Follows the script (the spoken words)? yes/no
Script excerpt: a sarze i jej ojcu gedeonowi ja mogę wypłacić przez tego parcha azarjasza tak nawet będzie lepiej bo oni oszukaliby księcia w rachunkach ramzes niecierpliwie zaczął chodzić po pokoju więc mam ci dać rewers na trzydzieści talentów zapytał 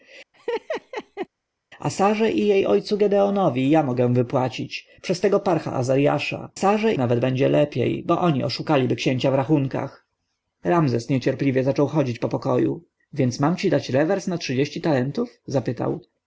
no